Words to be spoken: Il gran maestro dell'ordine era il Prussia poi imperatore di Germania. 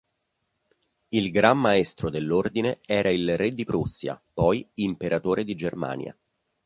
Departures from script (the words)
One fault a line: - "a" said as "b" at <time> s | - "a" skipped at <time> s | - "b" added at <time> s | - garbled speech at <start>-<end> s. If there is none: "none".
- "re di" added at 3.4 s